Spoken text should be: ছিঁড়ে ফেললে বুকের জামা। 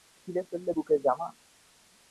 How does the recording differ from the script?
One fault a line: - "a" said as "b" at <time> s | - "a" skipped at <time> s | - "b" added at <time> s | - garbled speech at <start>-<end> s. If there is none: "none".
none